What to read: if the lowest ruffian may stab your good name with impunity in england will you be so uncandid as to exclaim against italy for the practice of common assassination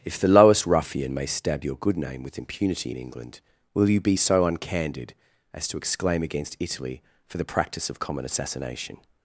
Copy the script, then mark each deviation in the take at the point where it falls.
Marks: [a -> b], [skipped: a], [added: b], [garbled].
if the lowest ruffian may stab your good name with impunity in england will you be so uncandid as to exclaim against italy for the practice of common assassination